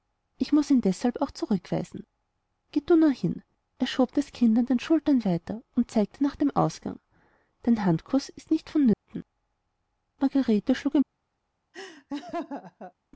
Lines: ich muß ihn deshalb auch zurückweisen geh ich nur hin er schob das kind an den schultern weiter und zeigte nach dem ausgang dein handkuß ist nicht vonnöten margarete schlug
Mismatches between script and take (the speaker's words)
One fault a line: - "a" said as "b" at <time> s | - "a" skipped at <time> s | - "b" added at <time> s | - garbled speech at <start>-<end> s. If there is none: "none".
- "ich" said as "du" at 2.9 s